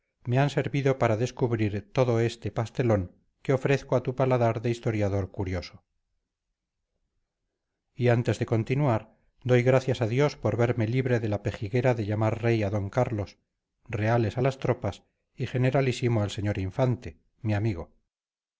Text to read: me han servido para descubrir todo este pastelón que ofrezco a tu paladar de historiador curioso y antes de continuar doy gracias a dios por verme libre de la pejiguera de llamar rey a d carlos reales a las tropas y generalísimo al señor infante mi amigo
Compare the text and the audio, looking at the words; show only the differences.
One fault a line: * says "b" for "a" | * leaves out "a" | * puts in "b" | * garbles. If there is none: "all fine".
all fine